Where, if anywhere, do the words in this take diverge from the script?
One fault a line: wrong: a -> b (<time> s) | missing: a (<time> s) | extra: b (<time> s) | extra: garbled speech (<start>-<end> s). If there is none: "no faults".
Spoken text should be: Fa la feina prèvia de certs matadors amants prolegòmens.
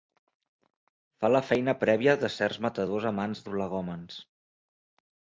no faults